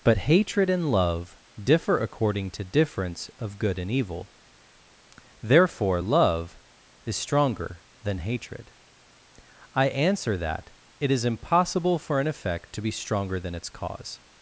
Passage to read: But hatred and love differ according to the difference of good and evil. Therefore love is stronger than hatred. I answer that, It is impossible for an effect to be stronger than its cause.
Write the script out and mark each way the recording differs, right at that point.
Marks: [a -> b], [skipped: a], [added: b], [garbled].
But hatred and love differ according to [skipped: the] difference of good and evil. Therefore love is stronger than hatred. I answer that, It is impossible for an effect to be stronger than its cause.